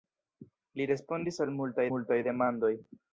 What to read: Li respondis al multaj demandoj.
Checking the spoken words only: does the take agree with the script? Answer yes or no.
no